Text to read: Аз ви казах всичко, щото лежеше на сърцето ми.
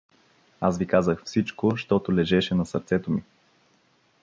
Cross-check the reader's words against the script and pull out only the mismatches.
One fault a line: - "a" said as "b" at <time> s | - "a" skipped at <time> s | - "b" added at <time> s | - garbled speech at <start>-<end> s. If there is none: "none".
none